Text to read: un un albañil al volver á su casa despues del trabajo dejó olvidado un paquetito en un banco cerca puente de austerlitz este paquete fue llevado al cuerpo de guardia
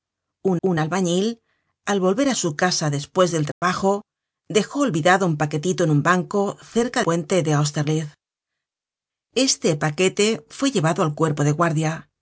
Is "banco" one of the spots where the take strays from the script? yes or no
no